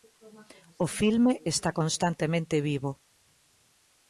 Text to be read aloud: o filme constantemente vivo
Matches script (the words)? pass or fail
fail